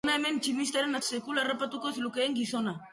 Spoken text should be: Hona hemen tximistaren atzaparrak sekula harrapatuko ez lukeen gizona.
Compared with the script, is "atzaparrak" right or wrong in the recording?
wrong